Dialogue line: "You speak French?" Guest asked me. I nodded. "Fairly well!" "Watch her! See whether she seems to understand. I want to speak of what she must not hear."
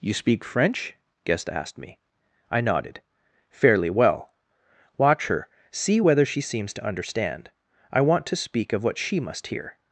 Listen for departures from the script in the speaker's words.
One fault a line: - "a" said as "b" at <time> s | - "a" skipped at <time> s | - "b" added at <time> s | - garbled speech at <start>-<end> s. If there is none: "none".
- "not" skipped at 9.5 s